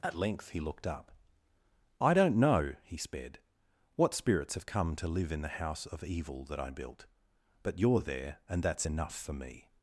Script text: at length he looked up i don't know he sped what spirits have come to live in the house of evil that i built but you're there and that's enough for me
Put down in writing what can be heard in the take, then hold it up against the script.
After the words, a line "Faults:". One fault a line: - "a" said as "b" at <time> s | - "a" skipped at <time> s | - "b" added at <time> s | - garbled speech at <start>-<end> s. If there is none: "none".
at length he looked up i don't know he sped what spirits have come to live in the house of evil that i built but you're there and that's enough for me
Faults:
none